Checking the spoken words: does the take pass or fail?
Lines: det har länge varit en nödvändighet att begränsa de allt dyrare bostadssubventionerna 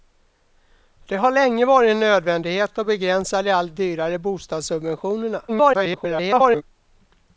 fail